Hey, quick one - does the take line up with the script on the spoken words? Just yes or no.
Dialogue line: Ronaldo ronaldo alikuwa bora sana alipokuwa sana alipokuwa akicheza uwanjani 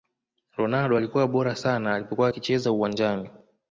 no